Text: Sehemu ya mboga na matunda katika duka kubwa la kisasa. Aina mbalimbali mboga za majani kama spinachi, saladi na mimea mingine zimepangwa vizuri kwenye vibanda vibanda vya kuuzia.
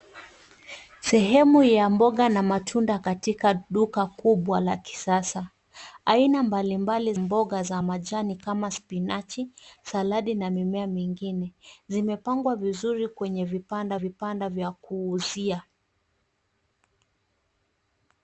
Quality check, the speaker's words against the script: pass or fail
pass